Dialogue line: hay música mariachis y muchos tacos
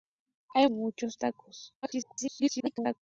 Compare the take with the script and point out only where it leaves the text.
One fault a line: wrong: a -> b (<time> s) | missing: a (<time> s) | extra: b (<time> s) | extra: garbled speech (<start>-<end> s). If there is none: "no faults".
missing: música mariachis (0.7 s)
extra: garbled speech (1.8-3.0 s)